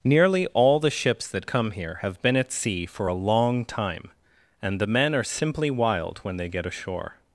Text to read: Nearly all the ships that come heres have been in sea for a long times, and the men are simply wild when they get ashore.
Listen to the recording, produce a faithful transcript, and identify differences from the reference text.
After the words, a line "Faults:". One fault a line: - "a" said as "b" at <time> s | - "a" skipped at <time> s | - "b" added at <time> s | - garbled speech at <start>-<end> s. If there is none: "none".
Nearly all the ships that come here have been at sea for a long time, and the men are simply wild when they get ashore.
Faults:
- "heres" said as "here" at 1.7 s
- "in" said as "at" at 2.4 s
- "times" said as "time" at 3.7 s